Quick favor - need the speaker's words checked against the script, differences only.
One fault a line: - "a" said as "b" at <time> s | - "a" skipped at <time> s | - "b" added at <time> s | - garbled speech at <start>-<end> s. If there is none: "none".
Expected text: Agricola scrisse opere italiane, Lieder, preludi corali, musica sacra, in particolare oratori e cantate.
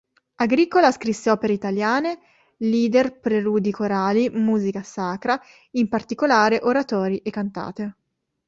none